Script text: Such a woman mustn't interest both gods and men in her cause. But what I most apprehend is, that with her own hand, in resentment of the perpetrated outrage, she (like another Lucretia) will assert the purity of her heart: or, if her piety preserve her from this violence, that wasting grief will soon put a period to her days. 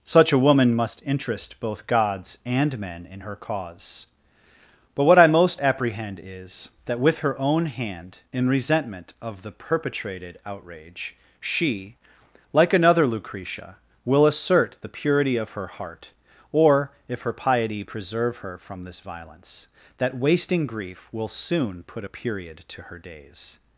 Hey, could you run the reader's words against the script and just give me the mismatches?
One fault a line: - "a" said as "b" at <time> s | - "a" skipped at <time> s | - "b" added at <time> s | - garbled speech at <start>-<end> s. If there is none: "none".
- "mustn't" said as "must" at 0.7 s